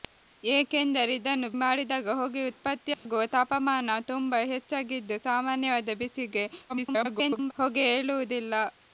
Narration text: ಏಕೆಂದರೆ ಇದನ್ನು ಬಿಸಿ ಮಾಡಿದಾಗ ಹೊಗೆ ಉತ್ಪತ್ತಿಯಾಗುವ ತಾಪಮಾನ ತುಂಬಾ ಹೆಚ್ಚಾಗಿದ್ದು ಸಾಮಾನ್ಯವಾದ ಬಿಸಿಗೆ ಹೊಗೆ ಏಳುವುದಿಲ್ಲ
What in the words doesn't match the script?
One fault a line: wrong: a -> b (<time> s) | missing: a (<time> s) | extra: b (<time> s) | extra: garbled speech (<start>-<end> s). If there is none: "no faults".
missing: ಬಿಸಿ (1.5 s)
extra: garbled speech (6.7-7.5 s)